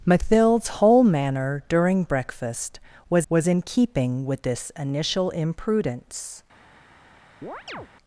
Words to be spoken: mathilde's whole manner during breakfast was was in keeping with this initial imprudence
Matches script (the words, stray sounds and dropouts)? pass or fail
fail